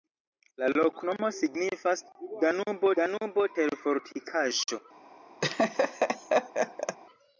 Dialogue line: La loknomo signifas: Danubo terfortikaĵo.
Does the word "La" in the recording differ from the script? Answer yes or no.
no